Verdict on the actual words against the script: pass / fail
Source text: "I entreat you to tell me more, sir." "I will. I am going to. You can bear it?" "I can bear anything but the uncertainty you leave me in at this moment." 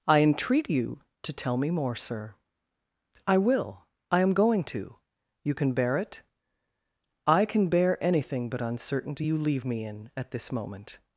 fail